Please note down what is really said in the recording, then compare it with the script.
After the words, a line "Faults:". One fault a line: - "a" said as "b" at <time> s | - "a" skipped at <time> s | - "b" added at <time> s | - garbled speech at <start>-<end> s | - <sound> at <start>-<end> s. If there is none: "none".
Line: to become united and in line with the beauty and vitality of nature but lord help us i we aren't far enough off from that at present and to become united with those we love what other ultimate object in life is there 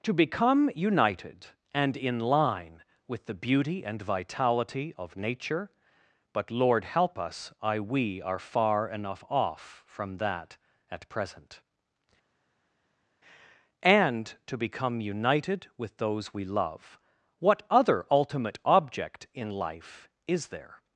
to become united and in line with the beauty and vitality of nature but lord help us i we are far enough off from that at present and to become united with those we love what other ultimate object in life is there
Faults:
- "aren't" said as "are" at 8.2 s